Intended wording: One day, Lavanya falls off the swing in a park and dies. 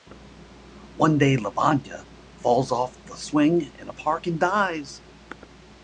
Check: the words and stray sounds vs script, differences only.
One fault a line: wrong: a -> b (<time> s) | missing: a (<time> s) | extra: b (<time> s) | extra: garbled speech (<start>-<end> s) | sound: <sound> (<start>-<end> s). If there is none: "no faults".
no faults